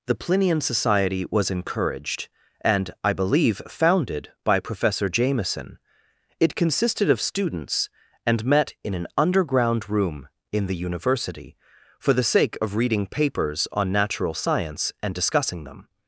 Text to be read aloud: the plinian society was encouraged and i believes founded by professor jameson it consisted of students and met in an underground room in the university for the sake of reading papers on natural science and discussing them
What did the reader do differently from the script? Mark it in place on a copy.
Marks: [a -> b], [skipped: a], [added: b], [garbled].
the plinian society was encouraged and i [believes -> believe] founded by professor jameson it consisted of students and met in an underground room in the university for the sake of reading papers on natural science and discussing them